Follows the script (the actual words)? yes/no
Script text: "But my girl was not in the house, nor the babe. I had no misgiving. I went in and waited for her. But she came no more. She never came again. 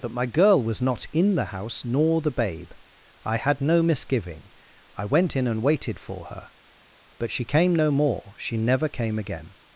yes